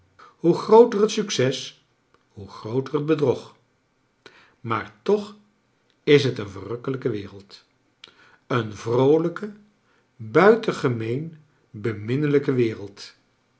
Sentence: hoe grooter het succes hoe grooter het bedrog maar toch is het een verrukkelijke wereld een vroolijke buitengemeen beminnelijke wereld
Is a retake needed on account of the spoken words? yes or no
no